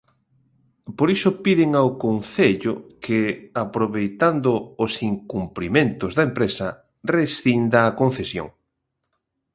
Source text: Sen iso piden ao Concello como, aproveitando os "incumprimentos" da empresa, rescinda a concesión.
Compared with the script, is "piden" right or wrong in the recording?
right